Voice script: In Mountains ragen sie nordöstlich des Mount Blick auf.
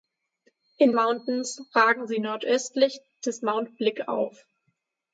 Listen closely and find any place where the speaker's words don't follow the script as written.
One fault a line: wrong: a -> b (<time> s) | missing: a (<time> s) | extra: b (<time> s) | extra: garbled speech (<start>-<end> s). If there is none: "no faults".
no faults